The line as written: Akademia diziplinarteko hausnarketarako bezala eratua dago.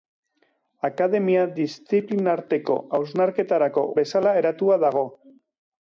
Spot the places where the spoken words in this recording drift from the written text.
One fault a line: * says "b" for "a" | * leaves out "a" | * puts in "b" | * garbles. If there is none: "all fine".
all fine